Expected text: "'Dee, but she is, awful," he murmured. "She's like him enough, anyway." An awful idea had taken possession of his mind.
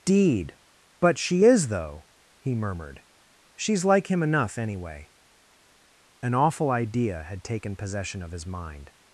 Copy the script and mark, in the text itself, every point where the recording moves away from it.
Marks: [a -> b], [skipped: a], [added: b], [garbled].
["'Dee, -> Deed] but she is, [awful," -> though] he murmured. "She's like him enough, anyway." An awful idea had taken possession of his mind.